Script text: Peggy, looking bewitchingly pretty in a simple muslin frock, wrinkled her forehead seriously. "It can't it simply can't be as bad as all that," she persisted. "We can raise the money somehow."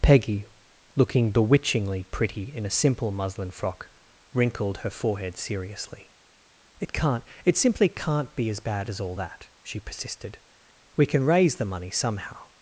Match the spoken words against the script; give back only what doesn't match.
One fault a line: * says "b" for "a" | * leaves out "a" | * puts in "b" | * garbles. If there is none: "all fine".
all fine